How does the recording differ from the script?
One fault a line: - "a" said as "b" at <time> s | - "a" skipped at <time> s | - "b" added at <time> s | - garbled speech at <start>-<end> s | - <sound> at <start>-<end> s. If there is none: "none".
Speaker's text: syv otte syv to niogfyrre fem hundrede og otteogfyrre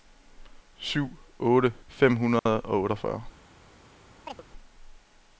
- "syv to niogfyrre" skipped at 1.7 s
- dropout at 2.4-2.5 s
- chirp at 4.3-4.4 s